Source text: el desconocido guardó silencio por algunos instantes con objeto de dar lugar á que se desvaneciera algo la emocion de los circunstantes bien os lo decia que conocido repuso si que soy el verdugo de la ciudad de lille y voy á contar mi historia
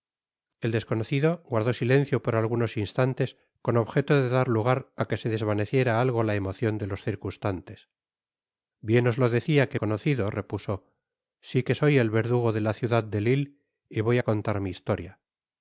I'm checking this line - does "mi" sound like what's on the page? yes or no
yes